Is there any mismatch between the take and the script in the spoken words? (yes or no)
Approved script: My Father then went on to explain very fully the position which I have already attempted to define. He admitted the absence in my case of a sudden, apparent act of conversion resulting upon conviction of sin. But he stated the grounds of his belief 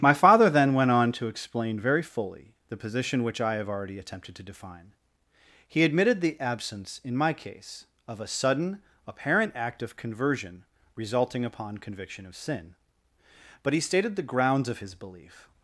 no